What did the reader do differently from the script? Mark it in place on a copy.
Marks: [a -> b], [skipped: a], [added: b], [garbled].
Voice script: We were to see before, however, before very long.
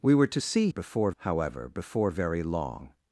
We were to see before, however, before very long.